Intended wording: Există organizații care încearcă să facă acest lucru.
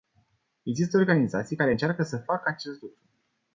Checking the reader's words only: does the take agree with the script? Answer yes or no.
yes